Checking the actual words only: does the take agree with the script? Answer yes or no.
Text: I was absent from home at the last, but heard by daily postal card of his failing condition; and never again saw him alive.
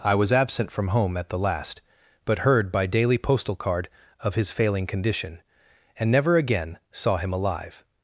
yes